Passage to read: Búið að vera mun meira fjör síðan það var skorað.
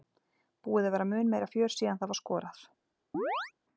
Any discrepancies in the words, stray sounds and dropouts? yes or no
yes